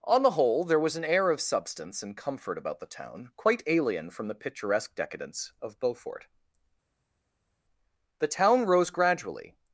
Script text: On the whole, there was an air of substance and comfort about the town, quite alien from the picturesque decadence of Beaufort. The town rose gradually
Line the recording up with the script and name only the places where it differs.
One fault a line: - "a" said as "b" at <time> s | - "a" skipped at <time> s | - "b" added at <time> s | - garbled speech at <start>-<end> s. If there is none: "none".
none